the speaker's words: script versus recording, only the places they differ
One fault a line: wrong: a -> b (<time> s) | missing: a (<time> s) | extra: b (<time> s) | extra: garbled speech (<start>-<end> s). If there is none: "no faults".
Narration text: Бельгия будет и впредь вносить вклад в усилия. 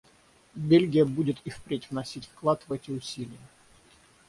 extra: эти (2.7 s)